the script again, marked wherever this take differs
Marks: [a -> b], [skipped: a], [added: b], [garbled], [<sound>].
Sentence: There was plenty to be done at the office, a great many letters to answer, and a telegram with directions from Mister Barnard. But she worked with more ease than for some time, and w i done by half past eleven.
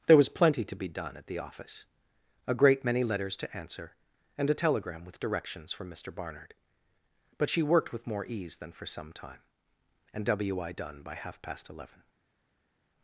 There was plenty to be done at the office, a great many letters to answer, and a telegram with directions from Mister Barnard. But she worked with more ease than for some time, and w i done by half past eleven.